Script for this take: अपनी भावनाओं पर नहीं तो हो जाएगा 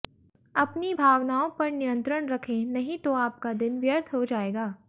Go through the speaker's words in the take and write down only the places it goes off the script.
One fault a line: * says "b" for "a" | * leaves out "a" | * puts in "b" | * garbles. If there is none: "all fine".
* puts in "नियंत्रण रखें"
* puts in "आपका दिन व्यर्थ"